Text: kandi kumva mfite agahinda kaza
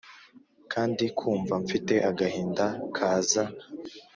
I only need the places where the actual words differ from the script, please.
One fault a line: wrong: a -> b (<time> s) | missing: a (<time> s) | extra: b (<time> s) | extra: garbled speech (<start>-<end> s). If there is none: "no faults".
no faults